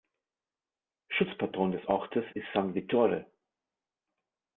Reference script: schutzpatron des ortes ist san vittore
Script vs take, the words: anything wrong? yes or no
no